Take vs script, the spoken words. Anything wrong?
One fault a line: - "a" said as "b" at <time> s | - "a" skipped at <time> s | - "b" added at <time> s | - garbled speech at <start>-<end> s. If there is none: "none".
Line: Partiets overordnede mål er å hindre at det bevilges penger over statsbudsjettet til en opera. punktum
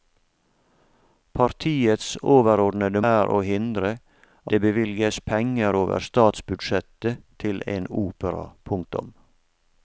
- "mål" skipped at 3.0 s
- "at" skipped at 3.9 s